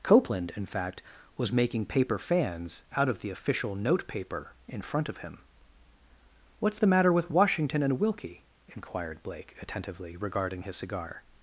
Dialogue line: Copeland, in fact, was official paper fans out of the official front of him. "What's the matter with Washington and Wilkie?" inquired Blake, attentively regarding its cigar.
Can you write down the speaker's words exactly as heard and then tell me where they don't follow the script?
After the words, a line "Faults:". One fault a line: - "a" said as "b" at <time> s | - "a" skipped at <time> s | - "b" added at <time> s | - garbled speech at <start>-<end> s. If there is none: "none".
Copeland, in fact, was making paper fans out of the official note paper in front of him. "What's the matter with Washington and Wilkie?" inquired Blake, attentively regarding his cigar.
Faults:
- "official" said as "making" at 1.5 s
- "note paper in" added at 3.8 s
- "its" said as "his" at 10.6 s